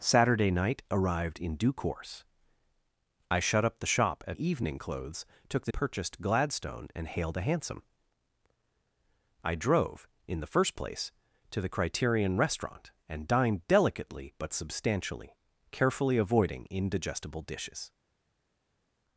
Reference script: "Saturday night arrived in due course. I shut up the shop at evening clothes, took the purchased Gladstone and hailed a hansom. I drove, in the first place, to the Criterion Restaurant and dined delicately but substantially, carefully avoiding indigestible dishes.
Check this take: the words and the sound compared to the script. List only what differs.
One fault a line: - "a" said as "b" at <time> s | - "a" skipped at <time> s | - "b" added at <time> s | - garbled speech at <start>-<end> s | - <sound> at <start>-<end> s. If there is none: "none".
none